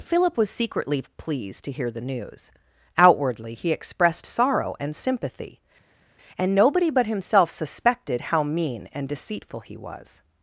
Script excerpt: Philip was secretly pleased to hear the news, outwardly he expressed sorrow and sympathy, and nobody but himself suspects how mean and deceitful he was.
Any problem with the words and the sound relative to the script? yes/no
yes